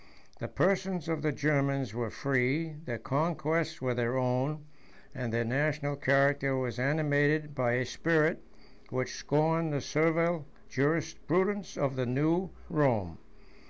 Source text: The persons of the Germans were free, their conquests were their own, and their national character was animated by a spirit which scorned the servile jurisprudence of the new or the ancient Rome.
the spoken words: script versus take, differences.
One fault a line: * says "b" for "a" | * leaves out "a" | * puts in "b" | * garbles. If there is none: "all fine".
* leaves out "or the ancient"